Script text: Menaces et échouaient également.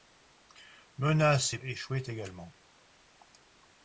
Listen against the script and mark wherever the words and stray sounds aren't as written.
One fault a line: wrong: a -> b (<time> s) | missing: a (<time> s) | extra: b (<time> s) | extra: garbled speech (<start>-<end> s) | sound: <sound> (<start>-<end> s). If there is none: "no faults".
no faults